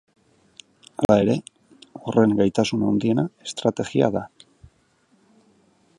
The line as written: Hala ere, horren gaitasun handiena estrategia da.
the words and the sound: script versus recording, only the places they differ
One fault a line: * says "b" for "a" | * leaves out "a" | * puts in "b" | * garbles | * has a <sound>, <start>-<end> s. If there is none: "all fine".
* has a dropout, 1.0-1.1 s